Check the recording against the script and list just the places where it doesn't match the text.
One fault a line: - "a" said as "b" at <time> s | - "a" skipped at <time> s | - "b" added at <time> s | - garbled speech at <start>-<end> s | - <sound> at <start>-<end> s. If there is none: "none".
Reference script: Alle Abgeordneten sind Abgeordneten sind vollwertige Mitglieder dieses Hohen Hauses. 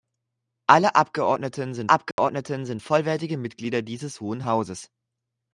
- dropout at 2.1-2.2 s